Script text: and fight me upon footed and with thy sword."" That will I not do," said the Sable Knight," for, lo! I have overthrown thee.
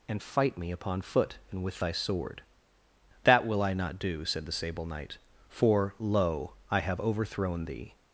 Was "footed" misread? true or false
true